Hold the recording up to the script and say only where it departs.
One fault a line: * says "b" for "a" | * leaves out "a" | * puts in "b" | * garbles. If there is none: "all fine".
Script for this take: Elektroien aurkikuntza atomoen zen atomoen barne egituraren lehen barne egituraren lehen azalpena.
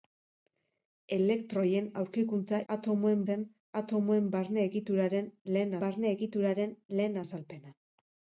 all fine